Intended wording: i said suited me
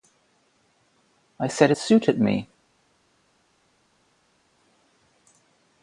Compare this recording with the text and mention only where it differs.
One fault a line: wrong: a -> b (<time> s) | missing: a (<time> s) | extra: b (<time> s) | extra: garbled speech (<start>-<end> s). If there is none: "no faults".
no faults